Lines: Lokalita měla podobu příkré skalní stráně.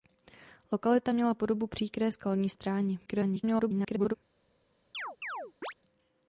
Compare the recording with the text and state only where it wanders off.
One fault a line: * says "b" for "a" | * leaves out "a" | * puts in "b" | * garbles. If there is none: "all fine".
* garbles